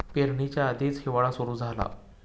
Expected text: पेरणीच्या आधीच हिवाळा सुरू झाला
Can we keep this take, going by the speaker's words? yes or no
yes